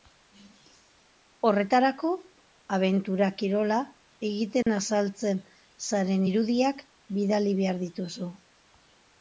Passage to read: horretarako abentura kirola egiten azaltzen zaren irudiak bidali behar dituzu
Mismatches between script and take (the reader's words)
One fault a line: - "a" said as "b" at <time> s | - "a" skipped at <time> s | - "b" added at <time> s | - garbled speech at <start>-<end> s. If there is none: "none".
none